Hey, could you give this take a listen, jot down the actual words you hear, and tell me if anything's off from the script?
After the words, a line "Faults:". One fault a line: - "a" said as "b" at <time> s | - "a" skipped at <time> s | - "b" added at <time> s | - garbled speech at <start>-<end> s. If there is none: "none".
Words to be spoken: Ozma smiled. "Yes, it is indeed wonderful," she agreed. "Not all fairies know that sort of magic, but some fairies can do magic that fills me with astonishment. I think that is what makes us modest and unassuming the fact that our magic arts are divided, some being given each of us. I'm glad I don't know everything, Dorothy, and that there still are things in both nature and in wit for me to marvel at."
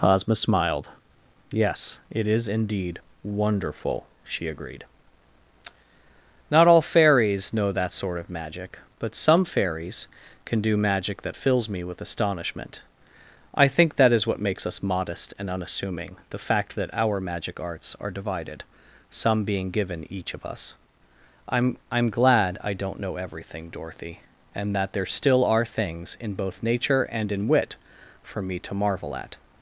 Ozma smiled. "Yes, it is indeed wonderful," she agreed. "Not all fairies know that sort of magic, but some fairies can do magic that fills me with astonishment. I think that is what makes us modest and unassuming the fact that our magic arts are divided, some being given each of us. I'm I'm glad I don't know everything, Dorothy, and that there still are things in both nature and in wit for me to marvel at."
Faults:
- "I'm" added at 21.9 s